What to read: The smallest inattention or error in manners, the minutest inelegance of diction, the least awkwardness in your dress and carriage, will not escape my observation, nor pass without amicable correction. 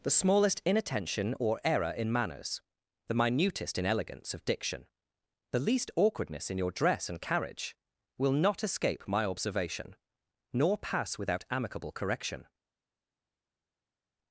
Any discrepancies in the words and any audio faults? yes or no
no